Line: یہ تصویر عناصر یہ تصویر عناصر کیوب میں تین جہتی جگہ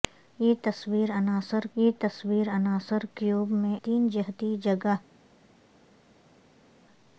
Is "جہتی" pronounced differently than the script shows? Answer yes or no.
no